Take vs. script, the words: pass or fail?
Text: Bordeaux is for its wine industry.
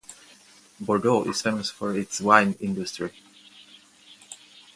fail